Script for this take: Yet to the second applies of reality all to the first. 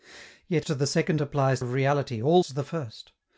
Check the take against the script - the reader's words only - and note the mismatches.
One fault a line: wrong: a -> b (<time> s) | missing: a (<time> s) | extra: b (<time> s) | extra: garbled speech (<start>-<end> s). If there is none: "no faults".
no faults